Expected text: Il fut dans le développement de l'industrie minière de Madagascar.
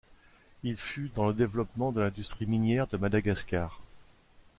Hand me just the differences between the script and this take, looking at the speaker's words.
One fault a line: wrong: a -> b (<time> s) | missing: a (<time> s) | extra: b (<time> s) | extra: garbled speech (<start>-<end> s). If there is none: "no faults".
no faults